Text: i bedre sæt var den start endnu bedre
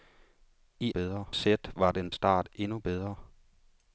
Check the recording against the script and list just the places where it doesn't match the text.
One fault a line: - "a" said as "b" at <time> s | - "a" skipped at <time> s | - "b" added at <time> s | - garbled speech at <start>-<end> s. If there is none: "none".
none